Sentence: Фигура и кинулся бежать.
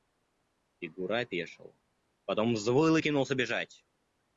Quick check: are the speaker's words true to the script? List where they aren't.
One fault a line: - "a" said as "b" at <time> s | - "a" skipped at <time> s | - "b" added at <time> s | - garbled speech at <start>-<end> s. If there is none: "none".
- "опешил потом взвыл" added at 1.2 s